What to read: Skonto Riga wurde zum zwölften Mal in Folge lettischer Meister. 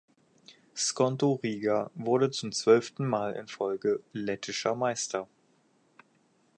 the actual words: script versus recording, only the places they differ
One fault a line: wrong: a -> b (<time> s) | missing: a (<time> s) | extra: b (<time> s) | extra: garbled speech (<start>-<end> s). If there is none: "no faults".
no faults